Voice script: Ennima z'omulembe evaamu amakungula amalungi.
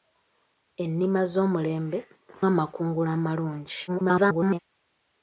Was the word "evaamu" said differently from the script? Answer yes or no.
yes